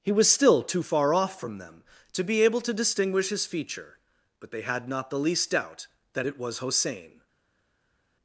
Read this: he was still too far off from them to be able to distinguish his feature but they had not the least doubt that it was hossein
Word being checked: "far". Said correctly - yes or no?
yes